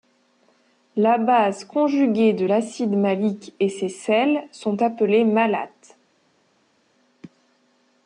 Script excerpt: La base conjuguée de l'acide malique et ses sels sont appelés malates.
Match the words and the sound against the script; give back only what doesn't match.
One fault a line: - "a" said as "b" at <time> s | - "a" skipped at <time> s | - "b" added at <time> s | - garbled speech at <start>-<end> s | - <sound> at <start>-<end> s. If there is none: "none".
none